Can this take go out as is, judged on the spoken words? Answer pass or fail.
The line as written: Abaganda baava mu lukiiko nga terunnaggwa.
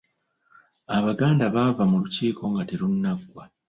pass